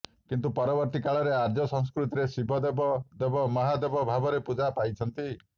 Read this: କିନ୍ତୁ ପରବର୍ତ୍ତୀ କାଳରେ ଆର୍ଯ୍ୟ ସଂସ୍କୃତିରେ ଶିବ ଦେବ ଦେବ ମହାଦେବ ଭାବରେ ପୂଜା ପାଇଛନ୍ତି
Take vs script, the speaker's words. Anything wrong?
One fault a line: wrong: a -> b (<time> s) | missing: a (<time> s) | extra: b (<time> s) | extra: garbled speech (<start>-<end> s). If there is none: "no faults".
no faults